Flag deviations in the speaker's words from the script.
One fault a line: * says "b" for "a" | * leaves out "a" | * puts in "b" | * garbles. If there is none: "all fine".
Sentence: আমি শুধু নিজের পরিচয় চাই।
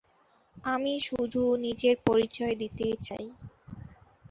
* puts in "দিতে"